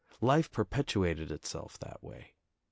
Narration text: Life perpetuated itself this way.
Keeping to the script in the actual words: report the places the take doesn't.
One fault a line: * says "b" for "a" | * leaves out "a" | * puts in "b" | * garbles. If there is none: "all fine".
* says "that" for "this"